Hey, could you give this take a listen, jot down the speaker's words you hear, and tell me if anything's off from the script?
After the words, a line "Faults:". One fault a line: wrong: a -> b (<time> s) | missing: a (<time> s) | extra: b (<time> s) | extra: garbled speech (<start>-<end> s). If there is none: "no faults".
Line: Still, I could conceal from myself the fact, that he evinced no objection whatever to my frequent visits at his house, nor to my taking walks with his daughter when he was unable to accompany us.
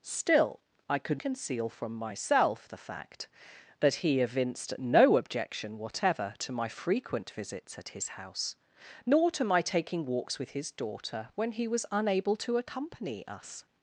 Still, I could conceal from myself the fact, that he evinced no objection whatever to my frequent visits at his house, nor to my taking walks with his daughter when he was unable to accompany us.
Faults:
no faults